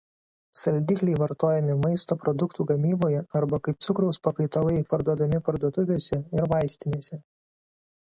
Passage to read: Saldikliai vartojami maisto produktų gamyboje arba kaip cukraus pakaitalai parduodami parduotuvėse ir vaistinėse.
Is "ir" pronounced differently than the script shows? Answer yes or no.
no